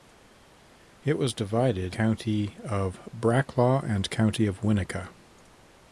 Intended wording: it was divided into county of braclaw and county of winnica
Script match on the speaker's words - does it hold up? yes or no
no